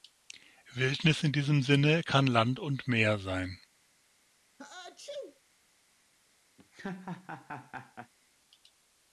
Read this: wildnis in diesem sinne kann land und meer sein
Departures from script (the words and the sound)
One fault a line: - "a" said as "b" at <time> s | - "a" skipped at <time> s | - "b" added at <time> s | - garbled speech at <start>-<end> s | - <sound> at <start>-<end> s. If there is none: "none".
- sneeze at 4.6-5.4 s
- laugh at 6.6-8.1 s